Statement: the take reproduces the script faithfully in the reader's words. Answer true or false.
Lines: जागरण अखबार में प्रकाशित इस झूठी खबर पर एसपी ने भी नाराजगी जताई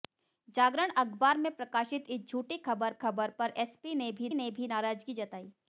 false